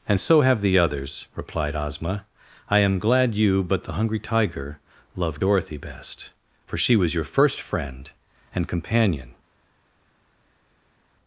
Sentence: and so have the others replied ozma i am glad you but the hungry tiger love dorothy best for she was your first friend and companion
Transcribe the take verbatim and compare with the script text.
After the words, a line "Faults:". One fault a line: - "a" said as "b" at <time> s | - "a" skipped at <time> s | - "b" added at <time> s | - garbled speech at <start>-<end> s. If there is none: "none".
and so have the others replied ozma i am glad you but the hungry tiger love dorothy best for she was your first friend and companion
Faults:
none